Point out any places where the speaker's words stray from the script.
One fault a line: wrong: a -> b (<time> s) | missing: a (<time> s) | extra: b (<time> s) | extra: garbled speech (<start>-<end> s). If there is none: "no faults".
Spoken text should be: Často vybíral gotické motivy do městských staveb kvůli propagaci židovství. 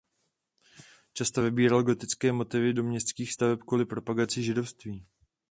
no faults